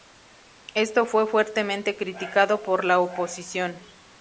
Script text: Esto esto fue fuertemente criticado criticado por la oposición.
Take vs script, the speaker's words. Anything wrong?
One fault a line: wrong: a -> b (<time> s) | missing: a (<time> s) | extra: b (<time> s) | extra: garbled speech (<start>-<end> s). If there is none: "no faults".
missing: esto (1.1 s)
missing: criticado (2.6 s)